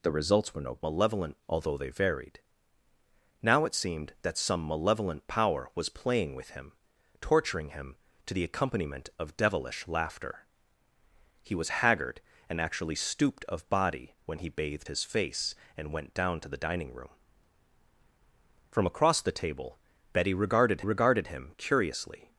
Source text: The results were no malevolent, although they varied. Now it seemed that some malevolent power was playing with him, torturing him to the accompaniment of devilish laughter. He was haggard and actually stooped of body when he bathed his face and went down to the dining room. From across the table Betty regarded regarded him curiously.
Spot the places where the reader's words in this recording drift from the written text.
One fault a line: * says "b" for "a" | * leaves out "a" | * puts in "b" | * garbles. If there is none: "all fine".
all fine